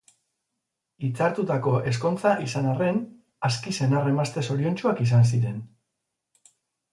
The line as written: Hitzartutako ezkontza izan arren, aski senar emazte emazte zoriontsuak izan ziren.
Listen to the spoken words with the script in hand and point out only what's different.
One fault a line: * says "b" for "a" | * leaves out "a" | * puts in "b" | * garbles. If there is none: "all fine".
* leaves out "emazte"